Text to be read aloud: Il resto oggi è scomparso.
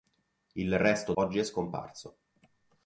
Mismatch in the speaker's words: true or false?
false